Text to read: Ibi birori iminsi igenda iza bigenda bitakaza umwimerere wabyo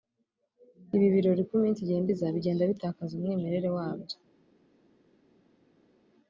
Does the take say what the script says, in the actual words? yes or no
no